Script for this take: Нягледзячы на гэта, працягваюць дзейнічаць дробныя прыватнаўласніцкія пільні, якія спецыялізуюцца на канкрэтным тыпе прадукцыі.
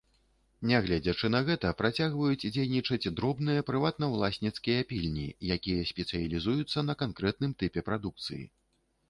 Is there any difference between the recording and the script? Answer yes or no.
no